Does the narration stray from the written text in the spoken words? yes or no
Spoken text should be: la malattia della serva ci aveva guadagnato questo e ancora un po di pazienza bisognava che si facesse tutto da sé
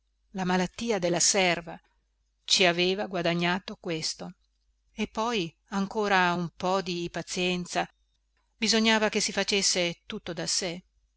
yes